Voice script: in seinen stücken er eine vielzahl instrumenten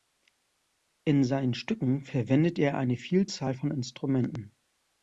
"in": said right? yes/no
yes